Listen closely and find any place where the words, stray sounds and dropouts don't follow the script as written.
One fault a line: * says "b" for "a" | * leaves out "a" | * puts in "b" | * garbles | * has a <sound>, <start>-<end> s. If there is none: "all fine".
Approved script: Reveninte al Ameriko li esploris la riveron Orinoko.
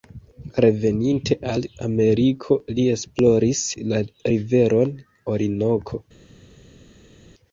all fine